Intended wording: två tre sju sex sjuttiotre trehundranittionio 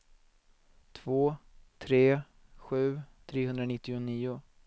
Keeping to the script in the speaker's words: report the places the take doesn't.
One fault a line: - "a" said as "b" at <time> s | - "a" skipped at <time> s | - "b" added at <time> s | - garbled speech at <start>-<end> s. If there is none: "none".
- "sex sjuttiotre" skipped at 3.0 s